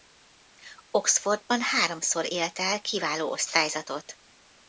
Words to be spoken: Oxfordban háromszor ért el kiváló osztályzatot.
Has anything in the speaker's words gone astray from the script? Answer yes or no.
no